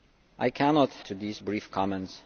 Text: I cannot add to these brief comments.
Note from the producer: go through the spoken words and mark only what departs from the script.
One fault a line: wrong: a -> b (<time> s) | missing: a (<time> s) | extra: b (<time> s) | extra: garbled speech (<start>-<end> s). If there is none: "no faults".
missing: add (0.9 s)